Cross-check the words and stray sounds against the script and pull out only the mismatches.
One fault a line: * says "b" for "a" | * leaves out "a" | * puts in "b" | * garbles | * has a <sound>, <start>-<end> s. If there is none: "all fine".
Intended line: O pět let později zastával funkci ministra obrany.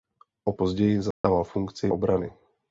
* leaves out "pět let"
* has a dropout, 1.1-1.2 s
* leaves out "ministra"